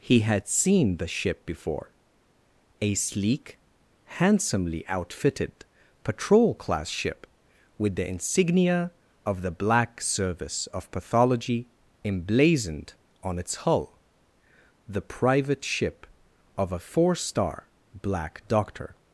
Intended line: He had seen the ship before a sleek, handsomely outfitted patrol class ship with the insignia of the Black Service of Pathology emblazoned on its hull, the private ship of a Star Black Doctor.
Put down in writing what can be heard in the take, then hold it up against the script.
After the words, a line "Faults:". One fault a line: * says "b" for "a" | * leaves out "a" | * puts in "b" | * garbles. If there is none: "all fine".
He had seen the ship before a sleek, handsomely outfitted patrol class ship with the insignia of the Black Service of Pathology emblazoned on its hull, the private ship of a Four star Black Doctor.
Faults:
* puts in "Four"